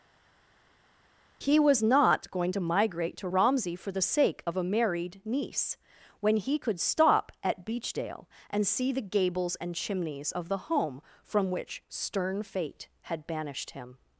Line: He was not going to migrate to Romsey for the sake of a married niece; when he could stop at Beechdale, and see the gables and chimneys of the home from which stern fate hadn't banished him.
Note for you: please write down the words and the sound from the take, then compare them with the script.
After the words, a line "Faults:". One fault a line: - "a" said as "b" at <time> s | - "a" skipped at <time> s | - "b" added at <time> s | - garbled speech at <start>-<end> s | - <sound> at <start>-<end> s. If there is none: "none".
He was not going to migrate to Romsey for the sake of a married niece; when he could stop at Beechdale, and see the gables and chimneys of the home from which stern fate had banished him.
Faults:
- "hadn't" said as "had" at 13.0 s